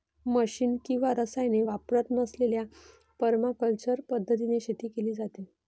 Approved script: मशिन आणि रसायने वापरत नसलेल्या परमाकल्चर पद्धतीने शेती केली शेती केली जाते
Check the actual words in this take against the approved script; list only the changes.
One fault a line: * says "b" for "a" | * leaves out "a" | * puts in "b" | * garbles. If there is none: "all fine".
* says "किंवा" for "आणि"
* leaves out "शेती केली"